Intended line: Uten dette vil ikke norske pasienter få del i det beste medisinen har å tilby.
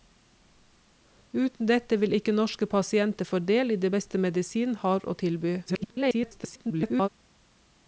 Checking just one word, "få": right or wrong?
right